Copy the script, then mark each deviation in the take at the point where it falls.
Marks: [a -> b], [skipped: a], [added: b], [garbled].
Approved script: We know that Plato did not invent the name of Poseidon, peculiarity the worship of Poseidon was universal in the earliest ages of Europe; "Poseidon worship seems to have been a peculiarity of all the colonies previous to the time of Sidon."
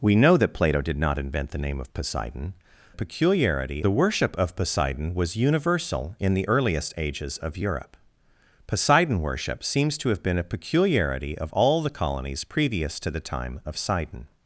We know that Plato did not invent the name of Poseidon, peculiarity the worship of Poseidon was universal in the earliest ages of Europe; "Poseidon worship seems to have been a peculiarity of all the colonies previous to the time of Sidon."